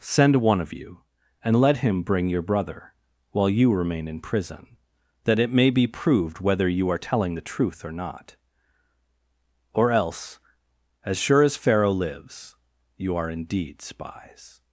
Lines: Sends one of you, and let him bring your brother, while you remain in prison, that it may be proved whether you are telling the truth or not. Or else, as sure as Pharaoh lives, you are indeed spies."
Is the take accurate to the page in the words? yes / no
no